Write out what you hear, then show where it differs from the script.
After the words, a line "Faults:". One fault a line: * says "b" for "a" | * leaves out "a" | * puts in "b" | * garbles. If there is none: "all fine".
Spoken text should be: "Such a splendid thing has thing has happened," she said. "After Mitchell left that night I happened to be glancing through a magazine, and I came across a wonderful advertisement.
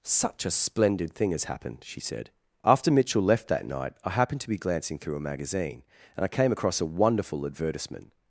"Such a splendid thing has happened," she said. "After Mitchell left that night I happened to be glancing through a magazine, and I came across a wonderful advertisement.
Faults:
* leaves out "thing has"